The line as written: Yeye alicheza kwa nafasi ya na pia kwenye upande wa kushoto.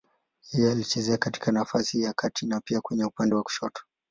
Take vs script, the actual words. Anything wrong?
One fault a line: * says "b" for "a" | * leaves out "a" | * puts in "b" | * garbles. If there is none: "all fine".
* says "katika" for "kwa"
* puts in "kati"